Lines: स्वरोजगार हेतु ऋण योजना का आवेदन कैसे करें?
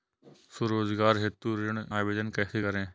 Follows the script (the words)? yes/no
no